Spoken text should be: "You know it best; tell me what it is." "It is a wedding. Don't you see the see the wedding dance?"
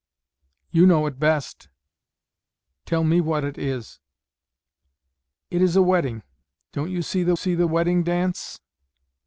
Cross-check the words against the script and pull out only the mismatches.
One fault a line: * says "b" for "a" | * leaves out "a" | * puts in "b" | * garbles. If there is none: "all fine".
all fine